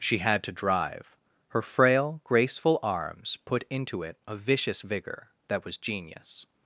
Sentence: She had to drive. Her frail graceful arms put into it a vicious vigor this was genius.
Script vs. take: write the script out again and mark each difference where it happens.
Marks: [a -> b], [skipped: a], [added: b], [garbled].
She had to drive. Her frail graceful arms put into it a vicious vigor [this -> that] was genius.